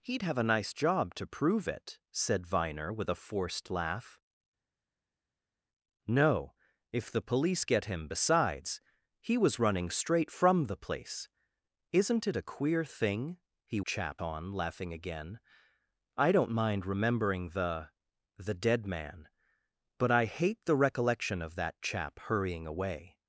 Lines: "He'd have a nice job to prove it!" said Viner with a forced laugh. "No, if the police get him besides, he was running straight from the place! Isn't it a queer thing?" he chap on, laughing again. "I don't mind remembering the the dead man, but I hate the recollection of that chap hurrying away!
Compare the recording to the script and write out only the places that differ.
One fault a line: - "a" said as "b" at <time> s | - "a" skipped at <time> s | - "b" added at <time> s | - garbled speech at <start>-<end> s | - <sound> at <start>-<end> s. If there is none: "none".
none